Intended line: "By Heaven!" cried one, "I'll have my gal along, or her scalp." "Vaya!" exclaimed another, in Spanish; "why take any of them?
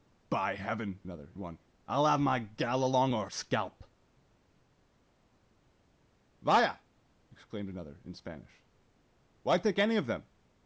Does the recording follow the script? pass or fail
fail